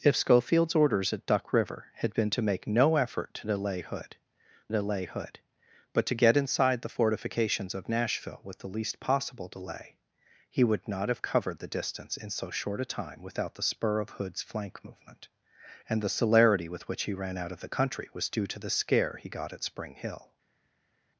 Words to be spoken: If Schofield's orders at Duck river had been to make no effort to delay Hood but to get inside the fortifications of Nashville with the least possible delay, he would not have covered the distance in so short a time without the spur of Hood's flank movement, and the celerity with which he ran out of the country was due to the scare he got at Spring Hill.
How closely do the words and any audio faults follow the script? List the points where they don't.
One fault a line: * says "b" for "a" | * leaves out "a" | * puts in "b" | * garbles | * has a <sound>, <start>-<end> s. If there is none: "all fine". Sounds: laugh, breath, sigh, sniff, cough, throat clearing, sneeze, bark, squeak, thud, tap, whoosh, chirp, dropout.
* puts in "delay Hood"